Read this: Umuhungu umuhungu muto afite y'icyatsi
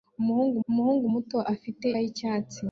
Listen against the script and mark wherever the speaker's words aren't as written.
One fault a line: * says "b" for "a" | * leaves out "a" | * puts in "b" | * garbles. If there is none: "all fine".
all fine